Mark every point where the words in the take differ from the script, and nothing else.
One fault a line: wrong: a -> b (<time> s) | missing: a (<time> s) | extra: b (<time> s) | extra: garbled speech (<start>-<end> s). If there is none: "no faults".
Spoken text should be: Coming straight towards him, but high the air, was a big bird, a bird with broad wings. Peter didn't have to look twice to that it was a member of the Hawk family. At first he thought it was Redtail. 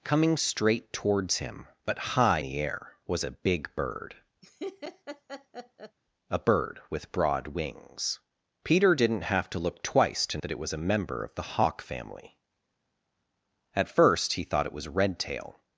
no faults